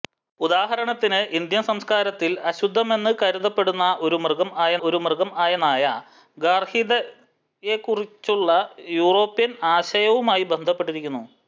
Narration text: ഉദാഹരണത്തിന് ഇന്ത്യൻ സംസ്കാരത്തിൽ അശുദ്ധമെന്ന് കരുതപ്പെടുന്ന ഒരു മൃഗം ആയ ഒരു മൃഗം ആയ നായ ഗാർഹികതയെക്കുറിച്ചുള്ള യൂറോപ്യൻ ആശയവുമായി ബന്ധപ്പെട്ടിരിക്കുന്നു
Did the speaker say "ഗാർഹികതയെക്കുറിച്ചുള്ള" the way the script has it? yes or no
yes